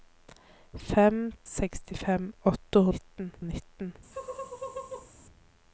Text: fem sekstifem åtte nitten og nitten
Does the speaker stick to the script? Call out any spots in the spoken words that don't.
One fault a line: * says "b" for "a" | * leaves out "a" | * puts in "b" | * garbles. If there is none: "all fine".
all fine